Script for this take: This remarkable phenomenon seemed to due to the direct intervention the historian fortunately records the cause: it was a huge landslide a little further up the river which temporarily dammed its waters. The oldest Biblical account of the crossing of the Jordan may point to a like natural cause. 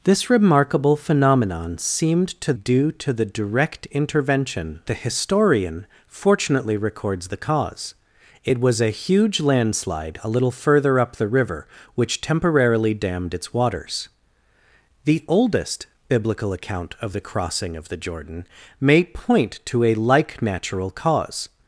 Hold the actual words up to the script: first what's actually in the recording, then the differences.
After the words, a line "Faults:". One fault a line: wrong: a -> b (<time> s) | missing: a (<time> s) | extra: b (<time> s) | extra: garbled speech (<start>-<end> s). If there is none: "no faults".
This remarkable phenomenon seemed to due to the direct intervention the historian fortunately records the cause: it was a huge landslide a little further up the river which temporarily dammed its waters. The oldest Biblical account of the crossing of the Jordan may point to a like natural cause.
Faults:
no faults